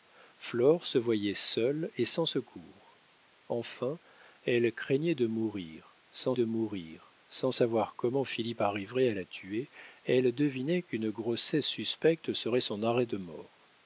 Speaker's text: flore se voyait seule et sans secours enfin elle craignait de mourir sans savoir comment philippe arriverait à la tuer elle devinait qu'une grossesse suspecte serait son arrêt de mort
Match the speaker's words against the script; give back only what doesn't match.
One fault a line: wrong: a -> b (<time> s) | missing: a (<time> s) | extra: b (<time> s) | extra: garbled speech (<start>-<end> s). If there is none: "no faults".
extra: de mourir sans (6.3 s)